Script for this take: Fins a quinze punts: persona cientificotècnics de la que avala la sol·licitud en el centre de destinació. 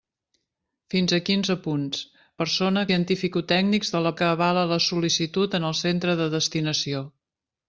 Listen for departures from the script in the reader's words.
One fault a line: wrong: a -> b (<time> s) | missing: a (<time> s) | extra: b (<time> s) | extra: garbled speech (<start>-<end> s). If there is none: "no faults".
no faults